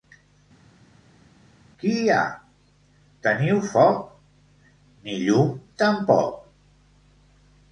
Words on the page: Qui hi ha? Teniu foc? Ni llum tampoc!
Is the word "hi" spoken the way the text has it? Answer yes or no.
yes